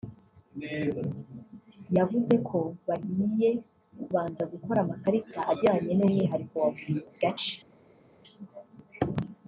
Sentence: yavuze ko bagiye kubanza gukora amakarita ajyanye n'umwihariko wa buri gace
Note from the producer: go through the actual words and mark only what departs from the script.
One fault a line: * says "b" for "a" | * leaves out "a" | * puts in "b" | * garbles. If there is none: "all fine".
all fine